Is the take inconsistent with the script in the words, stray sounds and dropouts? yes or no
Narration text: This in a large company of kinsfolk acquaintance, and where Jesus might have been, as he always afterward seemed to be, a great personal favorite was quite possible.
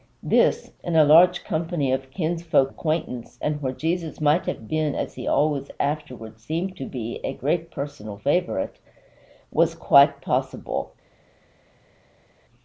no